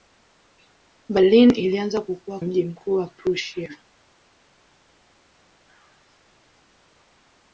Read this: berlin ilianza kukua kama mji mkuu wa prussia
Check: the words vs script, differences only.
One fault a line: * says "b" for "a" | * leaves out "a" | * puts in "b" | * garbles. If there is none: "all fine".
* leaves out "kama"